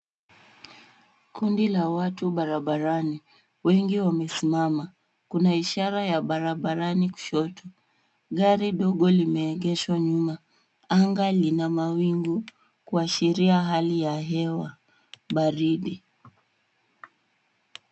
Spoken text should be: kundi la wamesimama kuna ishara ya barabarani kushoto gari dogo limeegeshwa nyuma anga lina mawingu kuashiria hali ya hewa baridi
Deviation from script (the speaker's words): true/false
true